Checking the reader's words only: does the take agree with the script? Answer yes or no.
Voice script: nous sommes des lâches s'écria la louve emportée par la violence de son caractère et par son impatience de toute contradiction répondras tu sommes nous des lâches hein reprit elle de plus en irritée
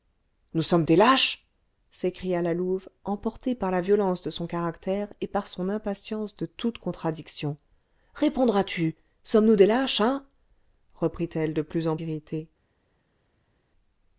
yes